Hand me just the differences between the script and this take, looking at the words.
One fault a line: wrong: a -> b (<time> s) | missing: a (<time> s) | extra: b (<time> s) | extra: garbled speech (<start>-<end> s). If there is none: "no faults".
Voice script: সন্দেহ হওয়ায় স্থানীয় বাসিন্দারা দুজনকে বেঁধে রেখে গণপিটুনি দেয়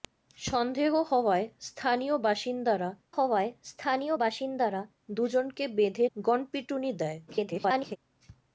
extra: হওয়ায় স্থানীয় বাসিন্দারা (3.2 s)
missing: রেখে (6.0 s)
extra: garbled speech (7.3-8.0 s)